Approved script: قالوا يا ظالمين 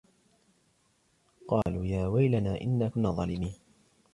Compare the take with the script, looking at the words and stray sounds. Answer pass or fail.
fail